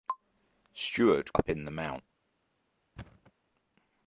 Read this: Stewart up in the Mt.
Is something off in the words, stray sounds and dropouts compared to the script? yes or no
yes